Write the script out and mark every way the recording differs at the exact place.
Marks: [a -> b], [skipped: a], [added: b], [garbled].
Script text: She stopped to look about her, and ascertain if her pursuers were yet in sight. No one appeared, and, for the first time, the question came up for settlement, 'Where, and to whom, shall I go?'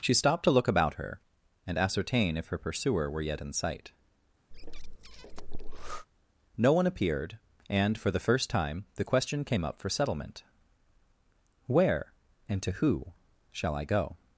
She stopped to look about her, and ascertain if her [pursuers -> pursuer] were yet in sight. No one appeared, and, for the first time, the question came up for settlement, 'Where, and to [whom, -> who] shall I go?'